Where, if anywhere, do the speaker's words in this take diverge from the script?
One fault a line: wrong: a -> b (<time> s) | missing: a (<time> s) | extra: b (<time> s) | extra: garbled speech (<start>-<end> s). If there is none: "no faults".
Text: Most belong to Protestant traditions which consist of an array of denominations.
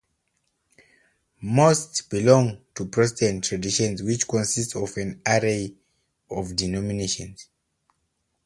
no faults